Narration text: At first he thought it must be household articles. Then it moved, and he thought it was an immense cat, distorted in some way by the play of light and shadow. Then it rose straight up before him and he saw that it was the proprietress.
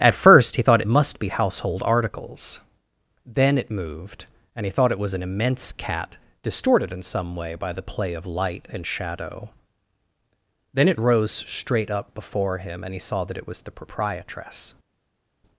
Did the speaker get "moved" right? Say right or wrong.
right